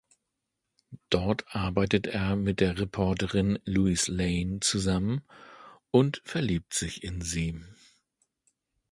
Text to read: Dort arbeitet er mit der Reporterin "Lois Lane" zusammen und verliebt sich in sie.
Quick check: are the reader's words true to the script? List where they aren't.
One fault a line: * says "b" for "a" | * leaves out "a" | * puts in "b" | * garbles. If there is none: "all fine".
all fine